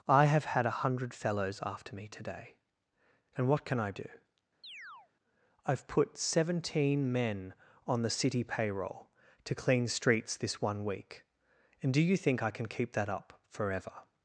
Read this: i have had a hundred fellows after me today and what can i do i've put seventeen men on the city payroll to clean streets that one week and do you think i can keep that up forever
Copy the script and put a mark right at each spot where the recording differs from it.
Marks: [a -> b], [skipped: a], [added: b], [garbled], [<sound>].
i have had a hundred fellows after me today and what can i do [chirp] i've put seventeen men on the city payroll to clean streets [that -> this] one week and do you think i can keep that up forever